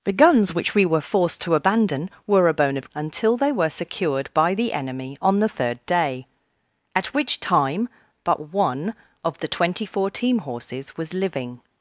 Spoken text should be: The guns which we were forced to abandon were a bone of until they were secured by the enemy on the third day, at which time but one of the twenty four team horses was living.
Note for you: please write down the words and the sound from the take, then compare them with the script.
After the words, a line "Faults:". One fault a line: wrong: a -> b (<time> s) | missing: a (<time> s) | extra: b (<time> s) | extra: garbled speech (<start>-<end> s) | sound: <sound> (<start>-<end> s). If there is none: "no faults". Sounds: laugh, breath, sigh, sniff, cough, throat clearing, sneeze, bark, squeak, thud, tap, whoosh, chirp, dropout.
The guns which we were forced to abandon were a bone of until they were secured by the enemy on the third day, at which time but one of the twenty four team horses was living.
Faults:
no faults